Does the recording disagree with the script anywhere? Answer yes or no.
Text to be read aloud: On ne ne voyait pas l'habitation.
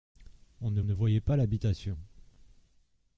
no